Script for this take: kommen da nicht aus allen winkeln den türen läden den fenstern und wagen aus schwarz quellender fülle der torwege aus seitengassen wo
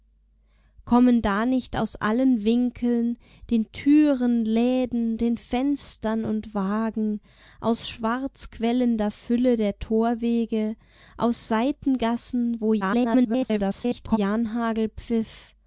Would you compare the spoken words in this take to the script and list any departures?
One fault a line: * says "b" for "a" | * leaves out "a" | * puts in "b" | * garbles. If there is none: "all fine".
* garbles